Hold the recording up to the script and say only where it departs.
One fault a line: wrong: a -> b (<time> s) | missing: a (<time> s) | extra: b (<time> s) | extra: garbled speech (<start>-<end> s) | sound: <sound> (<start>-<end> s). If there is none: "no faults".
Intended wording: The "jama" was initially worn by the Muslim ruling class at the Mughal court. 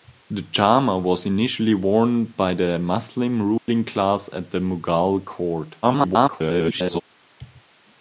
sound: dropout (3.6-3.7 s)
extra: garbled speech (5.8-7.0 s)